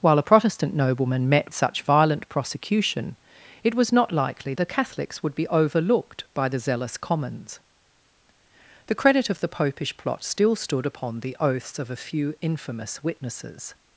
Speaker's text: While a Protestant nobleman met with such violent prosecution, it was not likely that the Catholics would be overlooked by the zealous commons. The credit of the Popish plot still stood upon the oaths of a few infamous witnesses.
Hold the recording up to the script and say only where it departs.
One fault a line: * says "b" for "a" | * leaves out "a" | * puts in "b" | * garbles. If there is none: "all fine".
* leaves out "with"
* leaves out "that"